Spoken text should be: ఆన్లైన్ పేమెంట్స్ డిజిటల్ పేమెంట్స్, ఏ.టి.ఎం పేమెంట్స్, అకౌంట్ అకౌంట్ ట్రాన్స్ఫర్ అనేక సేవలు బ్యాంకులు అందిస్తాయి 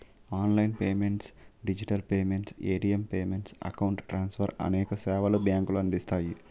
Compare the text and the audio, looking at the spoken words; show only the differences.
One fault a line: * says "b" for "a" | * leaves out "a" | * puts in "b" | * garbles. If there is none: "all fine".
* leaves out "అకౌంట్"